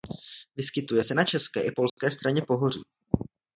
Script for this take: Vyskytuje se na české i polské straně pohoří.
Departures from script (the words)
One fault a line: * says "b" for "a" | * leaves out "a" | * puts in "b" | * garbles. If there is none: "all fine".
all fine